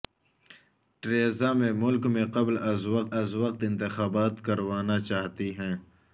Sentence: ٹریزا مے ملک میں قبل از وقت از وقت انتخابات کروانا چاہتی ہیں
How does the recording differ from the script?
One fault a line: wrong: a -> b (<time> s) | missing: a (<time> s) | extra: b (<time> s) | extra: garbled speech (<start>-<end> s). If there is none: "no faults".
no faults